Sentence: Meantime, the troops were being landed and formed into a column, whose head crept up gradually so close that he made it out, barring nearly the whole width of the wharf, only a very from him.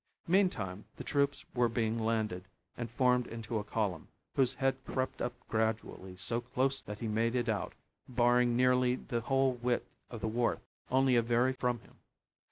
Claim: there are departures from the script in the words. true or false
false